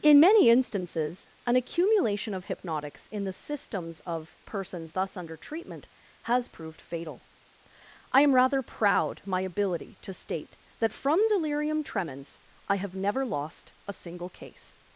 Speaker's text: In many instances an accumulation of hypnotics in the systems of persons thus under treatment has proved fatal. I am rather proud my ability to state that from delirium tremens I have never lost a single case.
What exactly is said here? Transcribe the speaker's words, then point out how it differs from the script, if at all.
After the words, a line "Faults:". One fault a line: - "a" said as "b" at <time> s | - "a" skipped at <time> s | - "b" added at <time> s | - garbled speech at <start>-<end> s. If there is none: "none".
In many instances an accumulation of hypnotics in the systems of persons thus under treatment has proved fatal. I am rather proud my ability to state that from delirium tremens I have never lost a single case.
Faults:
none